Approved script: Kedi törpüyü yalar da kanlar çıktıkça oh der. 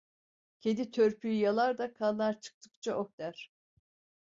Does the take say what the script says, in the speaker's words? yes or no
yes